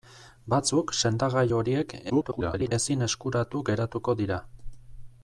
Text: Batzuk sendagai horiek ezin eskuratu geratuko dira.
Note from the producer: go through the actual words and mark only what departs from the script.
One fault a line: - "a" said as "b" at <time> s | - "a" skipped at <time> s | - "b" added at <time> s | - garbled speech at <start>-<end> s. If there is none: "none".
- garbled speech at 2.1-2.7 s